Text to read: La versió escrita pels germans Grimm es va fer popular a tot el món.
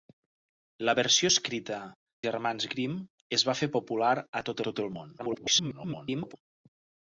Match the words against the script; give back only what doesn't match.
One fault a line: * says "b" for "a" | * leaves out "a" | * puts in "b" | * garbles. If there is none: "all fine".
* leaves out "pels"
* puts in "tot"
* garbles